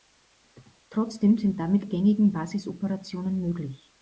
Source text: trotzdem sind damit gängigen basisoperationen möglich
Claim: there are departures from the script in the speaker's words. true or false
false